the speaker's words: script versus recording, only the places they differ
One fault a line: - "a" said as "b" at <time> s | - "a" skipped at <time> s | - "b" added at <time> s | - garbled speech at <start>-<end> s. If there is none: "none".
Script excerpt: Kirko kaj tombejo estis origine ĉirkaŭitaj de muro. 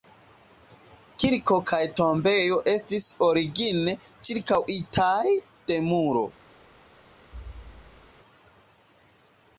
none